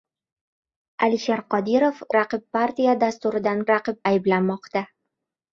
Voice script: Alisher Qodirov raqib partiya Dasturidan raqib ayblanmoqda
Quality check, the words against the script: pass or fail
pass